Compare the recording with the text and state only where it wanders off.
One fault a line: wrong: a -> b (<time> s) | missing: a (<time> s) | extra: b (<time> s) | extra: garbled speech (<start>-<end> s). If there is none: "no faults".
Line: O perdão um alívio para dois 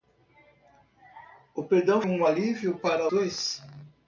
no faults